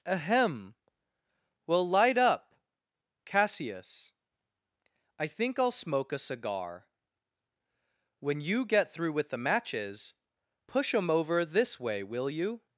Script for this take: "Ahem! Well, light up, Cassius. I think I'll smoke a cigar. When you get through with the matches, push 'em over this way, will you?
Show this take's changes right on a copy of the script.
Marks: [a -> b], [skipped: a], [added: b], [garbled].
"Ahem! Well, light up, Cassius. I think I'll smoke a cigar. When you get through with the matches, push 'em over this way, will you?